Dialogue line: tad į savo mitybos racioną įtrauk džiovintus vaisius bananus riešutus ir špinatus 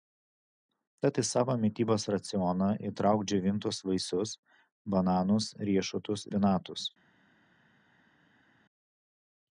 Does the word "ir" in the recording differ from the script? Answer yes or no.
yes